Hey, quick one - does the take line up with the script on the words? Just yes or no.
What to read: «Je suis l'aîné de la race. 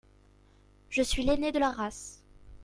yes